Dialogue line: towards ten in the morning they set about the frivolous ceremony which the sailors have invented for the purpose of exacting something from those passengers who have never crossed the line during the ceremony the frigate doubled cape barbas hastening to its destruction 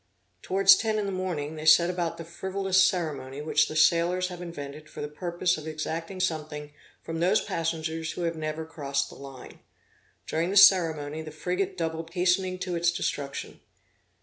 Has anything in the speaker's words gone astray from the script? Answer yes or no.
yes